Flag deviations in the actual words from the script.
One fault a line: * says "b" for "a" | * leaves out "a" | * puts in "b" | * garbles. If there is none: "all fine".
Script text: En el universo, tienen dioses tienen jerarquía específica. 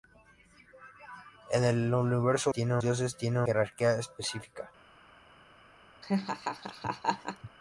all fine